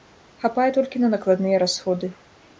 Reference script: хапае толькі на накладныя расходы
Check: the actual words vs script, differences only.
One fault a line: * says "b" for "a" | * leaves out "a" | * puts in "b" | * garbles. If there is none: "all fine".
all fine